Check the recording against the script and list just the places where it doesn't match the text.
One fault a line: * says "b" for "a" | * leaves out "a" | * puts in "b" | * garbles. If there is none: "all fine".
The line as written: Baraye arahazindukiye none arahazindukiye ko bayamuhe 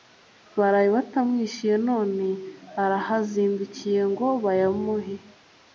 * says "batamwishyuye" for "arahazindukiye"
* says "ngo" for "ko"